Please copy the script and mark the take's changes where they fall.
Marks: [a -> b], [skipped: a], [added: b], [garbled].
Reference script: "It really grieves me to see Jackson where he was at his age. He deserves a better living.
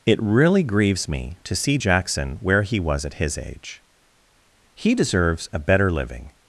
"It really grieves me to see Jackson where he was at his age. He deserves a better living.